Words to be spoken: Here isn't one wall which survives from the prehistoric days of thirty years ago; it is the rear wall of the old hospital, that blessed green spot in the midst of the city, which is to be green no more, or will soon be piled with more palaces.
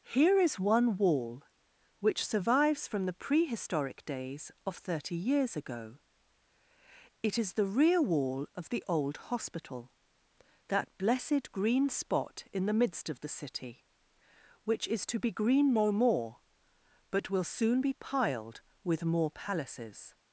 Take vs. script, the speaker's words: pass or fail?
fail